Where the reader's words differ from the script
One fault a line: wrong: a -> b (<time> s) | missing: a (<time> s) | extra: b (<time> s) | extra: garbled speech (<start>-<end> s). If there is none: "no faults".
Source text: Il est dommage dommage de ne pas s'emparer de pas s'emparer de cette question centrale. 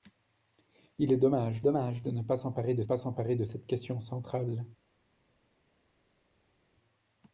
no faults